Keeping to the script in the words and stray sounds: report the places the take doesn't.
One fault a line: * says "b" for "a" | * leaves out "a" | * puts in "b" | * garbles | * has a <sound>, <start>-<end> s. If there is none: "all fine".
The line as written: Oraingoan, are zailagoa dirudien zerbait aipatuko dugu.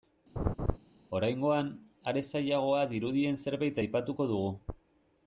* has a laugh, 0.4-0.8 s